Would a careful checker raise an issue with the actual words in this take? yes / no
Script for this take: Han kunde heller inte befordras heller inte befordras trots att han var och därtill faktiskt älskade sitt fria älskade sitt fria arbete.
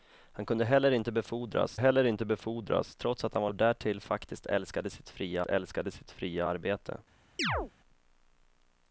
no